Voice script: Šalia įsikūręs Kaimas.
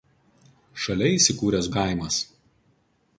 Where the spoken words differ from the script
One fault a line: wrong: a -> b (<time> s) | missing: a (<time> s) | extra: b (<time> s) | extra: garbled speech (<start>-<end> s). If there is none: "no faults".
no faults